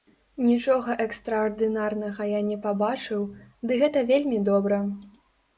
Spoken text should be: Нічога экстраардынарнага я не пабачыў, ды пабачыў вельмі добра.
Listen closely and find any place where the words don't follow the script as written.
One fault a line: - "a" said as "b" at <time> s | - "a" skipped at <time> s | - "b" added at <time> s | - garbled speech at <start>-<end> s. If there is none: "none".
- "пабачыў" said as "гэта" at 3.8 s